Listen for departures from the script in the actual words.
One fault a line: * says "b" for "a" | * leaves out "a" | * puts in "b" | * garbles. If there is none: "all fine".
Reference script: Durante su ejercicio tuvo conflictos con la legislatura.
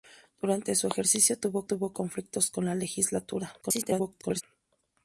* puts in "tuvo"
* garbles